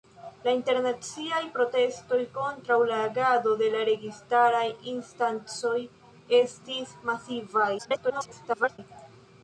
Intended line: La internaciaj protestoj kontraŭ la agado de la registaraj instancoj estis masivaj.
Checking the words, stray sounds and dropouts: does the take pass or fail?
fail